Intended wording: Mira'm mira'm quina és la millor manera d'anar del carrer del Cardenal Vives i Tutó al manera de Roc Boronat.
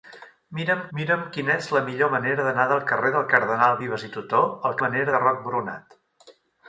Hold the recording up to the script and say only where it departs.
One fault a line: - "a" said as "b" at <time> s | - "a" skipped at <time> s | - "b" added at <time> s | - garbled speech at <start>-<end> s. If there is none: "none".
none